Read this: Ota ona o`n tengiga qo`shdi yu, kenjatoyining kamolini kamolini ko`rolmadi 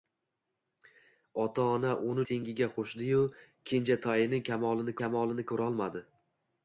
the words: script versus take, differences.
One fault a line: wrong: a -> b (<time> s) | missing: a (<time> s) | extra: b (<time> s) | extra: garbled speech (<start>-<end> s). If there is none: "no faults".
no faults